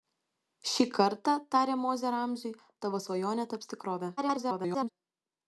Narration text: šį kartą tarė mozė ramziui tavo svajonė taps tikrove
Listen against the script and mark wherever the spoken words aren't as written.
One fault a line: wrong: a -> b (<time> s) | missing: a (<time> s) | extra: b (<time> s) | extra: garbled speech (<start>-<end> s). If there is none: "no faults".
extra: garbled speech (4.2-4.9 s)